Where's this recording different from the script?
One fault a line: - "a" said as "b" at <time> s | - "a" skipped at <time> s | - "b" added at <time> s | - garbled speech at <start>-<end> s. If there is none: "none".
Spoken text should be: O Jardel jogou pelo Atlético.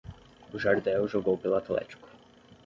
none